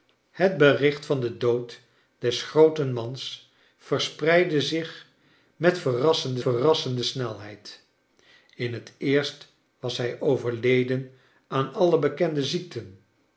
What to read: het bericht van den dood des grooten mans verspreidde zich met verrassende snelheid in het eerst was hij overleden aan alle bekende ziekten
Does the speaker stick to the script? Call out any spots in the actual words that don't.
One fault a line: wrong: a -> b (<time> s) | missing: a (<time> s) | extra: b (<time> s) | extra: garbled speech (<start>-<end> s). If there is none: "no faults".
extra: verrassende (6.4 s)